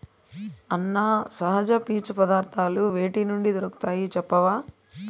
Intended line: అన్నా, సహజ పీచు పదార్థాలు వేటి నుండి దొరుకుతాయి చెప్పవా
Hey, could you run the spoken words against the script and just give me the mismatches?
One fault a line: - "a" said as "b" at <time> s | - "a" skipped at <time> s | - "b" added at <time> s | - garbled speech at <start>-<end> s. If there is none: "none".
none